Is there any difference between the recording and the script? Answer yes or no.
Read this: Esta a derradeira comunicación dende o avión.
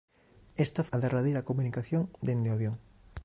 no